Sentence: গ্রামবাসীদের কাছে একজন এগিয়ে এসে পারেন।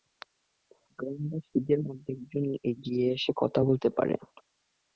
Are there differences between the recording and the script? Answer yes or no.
yes